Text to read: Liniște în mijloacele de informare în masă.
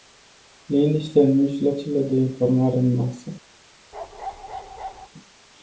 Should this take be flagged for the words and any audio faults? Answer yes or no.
yes